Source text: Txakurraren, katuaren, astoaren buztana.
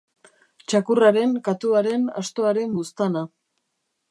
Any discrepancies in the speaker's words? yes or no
no